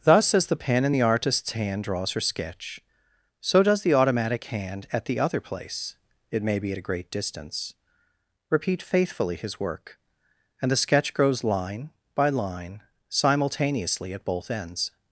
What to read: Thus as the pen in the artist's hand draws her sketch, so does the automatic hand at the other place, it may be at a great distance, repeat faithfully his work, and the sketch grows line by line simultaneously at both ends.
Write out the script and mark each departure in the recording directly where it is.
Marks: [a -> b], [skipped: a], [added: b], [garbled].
Thus as the pen in the artist's hand draws her sketch, so does the automatic hand at the other place, it may be at a great distance, repeat faithfully his work, and the sketch grows line by line simultaneously at both ends.